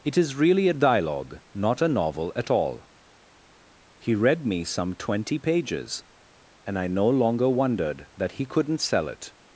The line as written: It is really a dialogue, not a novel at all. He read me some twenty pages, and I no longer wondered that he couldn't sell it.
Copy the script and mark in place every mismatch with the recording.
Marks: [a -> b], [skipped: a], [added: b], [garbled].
It is really a dialogue, not a novel at all. He read me some twenty pages, and I no longer wondered that he couldn't sell it.